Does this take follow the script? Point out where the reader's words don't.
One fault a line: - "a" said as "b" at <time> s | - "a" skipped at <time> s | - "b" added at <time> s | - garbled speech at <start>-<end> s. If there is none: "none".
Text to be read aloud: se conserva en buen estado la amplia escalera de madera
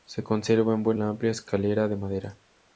- "estado" skipped at 1.0 s